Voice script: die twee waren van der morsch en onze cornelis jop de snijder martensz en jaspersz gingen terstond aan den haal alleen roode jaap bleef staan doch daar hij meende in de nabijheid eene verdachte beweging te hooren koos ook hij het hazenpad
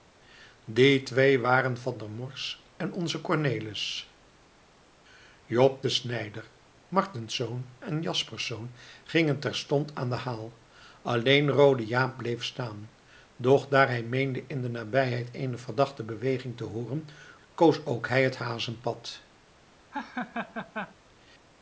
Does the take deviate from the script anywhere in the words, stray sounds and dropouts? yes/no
yes